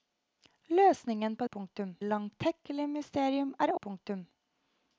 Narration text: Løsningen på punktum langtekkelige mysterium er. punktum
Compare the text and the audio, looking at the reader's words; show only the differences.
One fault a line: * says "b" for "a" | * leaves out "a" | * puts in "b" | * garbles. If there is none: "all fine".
all fine